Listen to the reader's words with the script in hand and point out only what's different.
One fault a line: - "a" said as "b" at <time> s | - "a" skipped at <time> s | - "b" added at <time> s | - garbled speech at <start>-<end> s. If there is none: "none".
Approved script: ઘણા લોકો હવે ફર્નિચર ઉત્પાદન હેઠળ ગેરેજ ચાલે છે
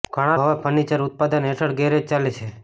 - "લોકો" skipped at 0.4 s